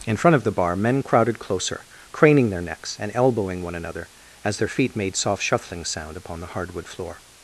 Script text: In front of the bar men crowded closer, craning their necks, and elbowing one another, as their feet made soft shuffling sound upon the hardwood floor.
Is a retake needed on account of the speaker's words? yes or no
no